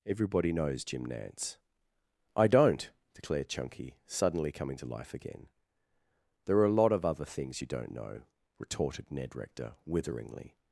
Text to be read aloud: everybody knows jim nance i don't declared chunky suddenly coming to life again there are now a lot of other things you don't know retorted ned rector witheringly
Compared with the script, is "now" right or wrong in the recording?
wrong